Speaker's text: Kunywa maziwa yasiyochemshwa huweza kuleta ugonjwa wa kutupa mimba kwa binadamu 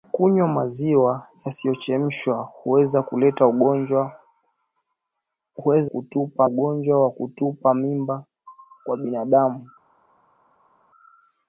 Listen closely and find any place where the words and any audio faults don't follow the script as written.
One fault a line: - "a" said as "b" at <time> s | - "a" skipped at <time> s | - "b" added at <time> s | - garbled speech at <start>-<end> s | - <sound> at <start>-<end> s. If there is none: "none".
- "kuleta" said as "kutupa" at 5.8 s